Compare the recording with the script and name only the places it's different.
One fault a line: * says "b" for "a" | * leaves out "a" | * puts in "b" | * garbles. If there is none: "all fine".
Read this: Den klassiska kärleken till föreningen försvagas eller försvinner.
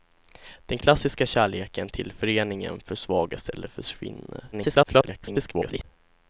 * garbles